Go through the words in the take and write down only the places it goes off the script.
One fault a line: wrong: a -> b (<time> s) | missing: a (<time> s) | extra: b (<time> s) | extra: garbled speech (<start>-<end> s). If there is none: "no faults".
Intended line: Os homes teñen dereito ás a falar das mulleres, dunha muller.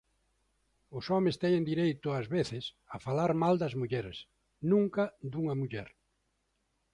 extra: veces (2.4 s)
extra: mal (3.4 s)
extra: nunca (4.7 s)